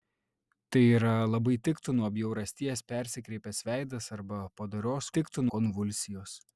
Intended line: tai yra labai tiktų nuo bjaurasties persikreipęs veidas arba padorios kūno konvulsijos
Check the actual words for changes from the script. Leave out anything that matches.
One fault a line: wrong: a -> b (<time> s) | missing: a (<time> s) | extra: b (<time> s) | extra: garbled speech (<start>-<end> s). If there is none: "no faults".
wrong: kūno -> tiktų (5.2 s)